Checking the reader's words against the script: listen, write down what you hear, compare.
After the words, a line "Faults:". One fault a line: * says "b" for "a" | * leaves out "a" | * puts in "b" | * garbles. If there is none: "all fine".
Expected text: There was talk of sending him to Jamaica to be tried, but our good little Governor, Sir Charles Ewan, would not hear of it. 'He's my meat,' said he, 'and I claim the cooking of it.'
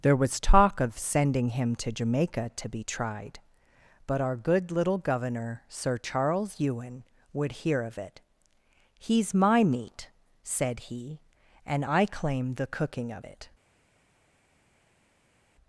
There was talk of sending him to Jamaica to be tried, but our good little Governor, Sir Charles Ewan, would hear of it. 'He's my meat,' said he, 'and I claim the cooking of it.'
Faults:
* leaves out "not"